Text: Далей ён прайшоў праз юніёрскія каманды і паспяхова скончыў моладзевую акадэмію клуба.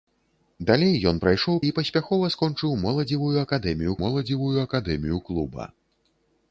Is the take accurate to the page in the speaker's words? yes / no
no